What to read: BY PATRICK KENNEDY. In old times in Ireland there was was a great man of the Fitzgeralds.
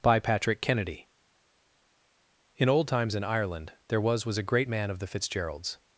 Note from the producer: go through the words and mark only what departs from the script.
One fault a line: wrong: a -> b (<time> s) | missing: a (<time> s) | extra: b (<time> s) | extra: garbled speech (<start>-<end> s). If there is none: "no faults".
no faults